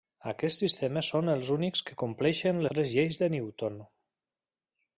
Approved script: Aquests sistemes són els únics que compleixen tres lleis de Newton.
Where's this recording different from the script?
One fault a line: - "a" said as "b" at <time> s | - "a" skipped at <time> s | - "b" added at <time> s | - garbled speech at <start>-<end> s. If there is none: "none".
none